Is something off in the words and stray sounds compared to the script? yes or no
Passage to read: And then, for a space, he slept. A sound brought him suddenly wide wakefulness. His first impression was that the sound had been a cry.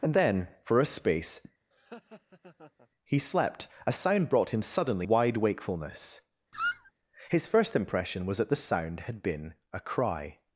yes